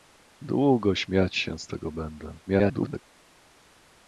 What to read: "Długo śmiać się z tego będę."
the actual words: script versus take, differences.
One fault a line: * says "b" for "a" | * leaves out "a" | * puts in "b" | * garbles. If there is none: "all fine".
* garbles